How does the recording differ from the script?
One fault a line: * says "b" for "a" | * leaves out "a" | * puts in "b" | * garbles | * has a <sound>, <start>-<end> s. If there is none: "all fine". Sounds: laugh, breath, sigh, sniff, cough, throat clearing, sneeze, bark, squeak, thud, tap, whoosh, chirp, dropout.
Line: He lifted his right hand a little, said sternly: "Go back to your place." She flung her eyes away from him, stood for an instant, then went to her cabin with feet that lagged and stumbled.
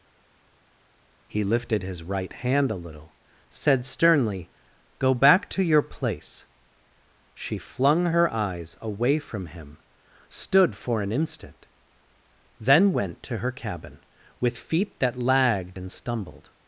all fine